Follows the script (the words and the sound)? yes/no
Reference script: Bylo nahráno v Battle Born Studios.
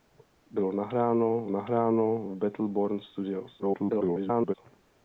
no